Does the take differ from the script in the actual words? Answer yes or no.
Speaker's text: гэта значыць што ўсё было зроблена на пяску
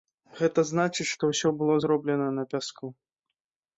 no